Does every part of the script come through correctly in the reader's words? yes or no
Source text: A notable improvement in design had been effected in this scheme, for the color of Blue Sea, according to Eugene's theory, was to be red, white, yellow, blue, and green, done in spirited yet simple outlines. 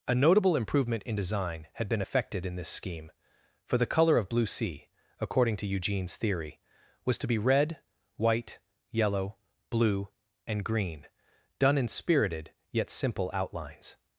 yes